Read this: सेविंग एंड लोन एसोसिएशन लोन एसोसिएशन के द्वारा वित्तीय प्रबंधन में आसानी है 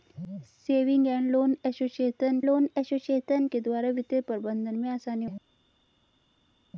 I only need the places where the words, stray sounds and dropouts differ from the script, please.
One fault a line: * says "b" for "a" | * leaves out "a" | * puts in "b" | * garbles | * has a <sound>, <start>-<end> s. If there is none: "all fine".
all fine